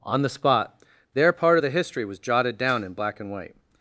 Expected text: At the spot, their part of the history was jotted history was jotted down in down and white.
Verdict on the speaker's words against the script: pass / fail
fail